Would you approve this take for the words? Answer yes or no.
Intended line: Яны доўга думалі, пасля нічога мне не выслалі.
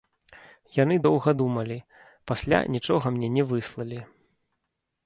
yes